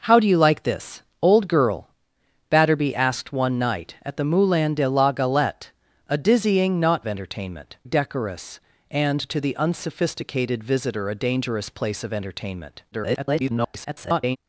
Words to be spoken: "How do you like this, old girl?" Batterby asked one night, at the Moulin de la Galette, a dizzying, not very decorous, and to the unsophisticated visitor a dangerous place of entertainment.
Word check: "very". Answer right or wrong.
wrong